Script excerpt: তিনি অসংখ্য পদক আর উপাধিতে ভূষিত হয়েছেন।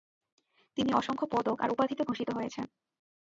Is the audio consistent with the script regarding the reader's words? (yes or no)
yes